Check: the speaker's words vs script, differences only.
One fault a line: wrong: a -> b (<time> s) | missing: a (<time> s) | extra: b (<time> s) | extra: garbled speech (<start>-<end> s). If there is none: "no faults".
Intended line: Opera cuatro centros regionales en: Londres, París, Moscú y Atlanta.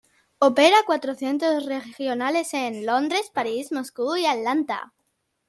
no faults